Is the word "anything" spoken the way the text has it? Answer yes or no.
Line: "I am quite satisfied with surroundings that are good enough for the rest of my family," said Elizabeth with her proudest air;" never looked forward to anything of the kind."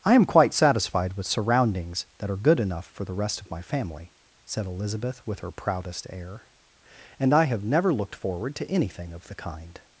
yes